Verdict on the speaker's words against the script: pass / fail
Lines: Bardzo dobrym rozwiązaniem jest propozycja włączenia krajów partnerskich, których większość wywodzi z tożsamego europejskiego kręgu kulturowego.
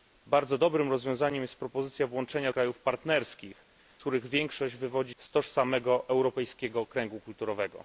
pass